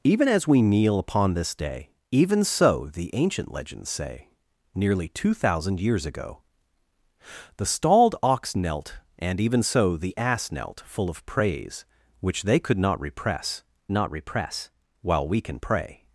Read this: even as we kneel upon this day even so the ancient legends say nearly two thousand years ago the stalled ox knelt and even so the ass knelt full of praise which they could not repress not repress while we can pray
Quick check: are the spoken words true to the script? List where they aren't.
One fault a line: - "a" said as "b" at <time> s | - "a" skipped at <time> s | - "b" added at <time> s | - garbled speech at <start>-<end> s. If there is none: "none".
none